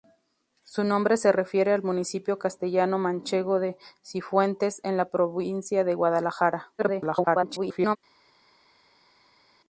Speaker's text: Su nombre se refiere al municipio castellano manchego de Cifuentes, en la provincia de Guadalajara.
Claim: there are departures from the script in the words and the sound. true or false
true